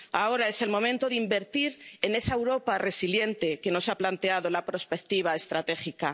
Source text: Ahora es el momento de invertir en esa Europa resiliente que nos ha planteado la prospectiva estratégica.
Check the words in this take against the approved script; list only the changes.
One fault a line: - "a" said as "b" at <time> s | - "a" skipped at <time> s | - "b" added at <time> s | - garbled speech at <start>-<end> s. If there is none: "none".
none